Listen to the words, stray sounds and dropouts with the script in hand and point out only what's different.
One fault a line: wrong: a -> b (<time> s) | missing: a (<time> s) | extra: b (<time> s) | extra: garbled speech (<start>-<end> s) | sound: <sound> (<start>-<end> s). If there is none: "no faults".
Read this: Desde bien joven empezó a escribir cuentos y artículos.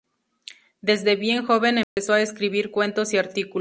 sound: dropout (1.8-2.0 s)